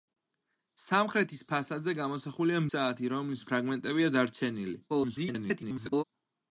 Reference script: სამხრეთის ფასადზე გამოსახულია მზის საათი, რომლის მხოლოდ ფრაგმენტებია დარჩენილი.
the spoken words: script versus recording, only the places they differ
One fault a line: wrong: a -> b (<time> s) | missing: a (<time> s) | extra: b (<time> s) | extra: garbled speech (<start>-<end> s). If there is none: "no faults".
missing: მზის (2.6 s)
missing: მხოლოდ (3.4 s)
extra: garbled speech (4.9-6.0 s)